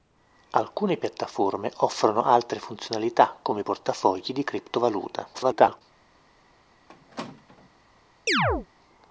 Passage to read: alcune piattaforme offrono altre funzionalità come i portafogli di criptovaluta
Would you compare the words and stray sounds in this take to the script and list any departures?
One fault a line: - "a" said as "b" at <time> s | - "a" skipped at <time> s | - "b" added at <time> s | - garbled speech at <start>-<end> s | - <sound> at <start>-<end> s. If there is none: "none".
- garbled speech at 5.3-5.8 s
- squeak at 6.9-7.7 s
- chirp at 8.3-8.7 s